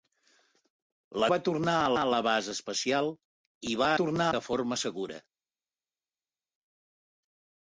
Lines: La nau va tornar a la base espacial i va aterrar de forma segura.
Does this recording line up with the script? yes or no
no